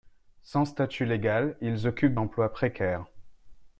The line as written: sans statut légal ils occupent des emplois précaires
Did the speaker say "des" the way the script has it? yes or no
no